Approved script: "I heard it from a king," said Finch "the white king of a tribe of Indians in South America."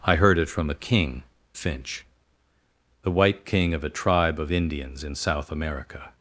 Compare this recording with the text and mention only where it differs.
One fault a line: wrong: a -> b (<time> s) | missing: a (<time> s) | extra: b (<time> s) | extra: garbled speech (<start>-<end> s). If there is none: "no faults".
missing: said (1.2 s)